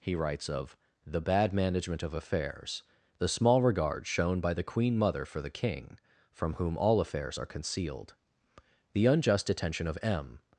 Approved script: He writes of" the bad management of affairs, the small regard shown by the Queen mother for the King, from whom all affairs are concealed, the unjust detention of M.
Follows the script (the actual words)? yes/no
yes